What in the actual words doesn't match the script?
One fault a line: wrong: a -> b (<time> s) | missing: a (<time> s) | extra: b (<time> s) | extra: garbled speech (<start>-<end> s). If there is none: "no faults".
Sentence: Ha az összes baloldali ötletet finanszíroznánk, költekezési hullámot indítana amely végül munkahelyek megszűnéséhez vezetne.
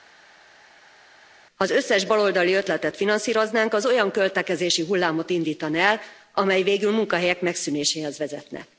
extra: az olyan (3.7 s)
extra: el (5.8 s)